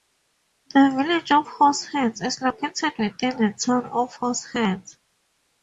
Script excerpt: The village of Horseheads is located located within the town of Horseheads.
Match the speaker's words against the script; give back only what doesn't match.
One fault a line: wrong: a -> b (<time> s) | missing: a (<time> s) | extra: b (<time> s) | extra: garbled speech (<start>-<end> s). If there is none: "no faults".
missing: located (2.9 s)